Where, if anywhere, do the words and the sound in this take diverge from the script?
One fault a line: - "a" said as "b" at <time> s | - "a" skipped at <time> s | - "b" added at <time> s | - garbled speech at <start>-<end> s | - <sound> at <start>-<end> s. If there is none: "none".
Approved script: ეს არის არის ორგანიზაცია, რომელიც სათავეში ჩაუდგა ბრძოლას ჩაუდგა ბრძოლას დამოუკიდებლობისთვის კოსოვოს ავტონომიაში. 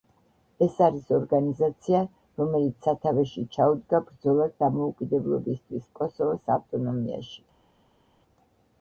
- "არის" skipped at 1.1 s
- "ჩაუდგა ბრძოლას" skipped at 4.6 s